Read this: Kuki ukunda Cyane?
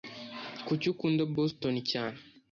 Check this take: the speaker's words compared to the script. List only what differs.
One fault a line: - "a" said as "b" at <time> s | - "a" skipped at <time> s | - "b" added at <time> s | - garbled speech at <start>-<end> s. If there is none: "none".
- "Boston" added at 1.4 s